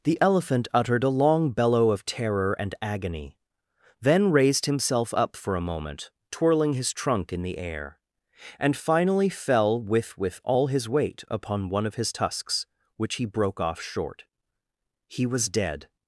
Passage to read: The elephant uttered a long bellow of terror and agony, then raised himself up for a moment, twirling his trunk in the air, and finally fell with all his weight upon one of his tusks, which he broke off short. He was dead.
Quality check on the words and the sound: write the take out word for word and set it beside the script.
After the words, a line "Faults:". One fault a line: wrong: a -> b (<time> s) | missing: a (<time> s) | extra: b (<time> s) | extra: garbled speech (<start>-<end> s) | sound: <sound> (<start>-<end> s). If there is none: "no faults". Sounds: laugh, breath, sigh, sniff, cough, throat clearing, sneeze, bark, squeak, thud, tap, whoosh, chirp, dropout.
The elephant uttered a long bellow of terror and agony, then raised himself up for a moment, twirling his trunk in the air, and finally fell with with all his weight upon one of his tusks, which he broke off short. He was dead.
Faults:
extra: with (10.2 s)